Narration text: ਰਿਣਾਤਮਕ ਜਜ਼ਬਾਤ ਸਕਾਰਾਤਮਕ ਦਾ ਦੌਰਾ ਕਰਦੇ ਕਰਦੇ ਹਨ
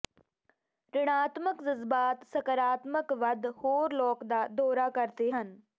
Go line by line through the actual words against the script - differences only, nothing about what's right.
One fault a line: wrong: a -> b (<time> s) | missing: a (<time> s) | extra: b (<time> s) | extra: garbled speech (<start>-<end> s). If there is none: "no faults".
extra: ਵੱਧ ਹੋਰ ਲੋਕ (3.1 s)
missing: ਕਰਦੇ (5.3 s)